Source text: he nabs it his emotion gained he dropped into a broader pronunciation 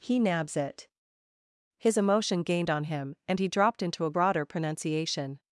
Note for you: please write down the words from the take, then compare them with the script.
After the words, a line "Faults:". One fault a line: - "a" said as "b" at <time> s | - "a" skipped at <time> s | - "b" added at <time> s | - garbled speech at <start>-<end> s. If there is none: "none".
he nabs it his emotion gained on him and he dropped into a broader pronunciation
Faults:
- "on him and" added at 2.7 s